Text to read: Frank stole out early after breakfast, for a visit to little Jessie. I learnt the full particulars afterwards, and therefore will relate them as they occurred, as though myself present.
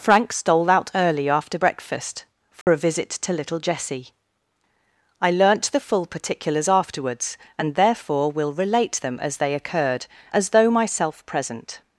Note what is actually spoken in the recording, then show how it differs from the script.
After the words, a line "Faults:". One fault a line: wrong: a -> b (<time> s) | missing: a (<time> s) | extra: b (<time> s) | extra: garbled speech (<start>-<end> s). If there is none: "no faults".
Frank stole out early after breakfast, for a visit to little Jessie. I learnt the full particulars afterwards, and therefore will relate them as they occurred, as though myself present.
Faults:
no faults